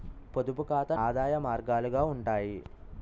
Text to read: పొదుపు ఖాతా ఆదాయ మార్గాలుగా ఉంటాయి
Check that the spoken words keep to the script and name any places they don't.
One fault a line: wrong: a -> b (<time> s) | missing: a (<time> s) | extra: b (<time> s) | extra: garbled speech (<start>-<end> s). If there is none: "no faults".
no faults